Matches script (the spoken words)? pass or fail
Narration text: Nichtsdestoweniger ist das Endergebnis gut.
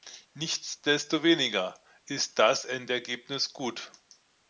pass